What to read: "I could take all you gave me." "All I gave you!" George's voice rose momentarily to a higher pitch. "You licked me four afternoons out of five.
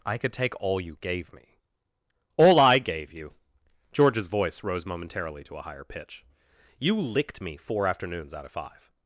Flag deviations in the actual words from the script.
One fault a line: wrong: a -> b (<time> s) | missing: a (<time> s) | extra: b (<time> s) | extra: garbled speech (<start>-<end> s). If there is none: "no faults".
no faults